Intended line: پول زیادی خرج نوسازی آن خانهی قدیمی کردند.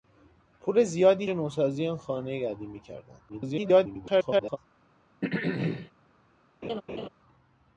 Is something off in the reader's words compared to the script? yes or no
yes